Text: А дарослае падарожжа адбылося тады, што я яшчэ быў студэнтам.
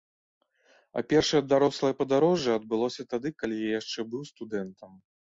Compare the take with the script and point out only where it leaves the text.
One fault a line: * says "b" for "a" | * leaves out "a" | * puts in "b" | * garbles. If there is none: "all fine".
* puts in "першае"
* says "калі" for "што"